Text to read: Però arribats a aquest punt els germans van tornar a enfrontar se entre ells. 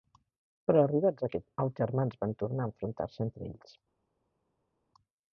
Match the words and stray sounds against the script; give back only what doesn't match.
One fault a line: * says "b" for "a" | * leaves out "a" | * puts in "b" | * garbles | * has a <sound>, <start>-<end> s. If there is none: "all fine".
* leaves out "punt"